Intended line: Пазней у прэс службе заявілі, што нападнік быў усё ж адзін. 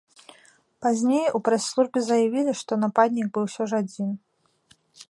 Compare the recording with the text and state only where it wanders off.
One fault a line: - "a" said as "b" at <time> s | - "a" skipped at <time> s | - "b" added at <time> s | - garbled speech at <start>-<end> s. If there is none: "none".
none